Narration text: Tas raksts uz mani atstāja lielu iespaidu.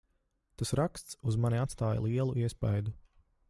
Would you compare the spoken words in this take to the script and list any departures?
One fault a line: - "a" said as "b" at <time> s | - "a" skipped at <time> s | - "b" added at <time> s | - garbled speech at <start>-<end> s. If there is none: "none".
none